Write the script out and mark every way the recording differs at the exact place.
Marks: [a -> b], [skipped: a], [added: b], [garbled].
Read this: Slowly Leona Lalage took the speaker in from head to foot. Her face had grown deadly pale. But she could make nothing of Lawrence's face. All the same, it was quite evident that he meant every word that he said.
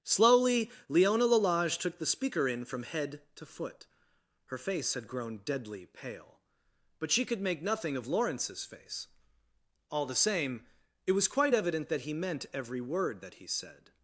Slowly Leona Lalage took the speaker in from head to foot. Her face had grown deadly pale. But she could make nothing of Lawrence's face. All the same, it was quite evident that he meant every word that he said.